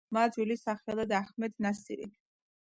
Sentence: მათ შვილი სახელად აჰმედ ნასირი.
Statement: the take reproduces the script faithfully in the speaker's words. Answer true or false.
true